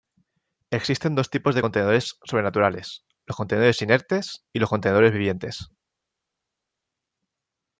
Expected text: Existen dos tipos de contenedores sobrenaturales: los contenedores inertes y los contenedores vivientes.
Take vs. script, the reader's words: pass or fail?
pass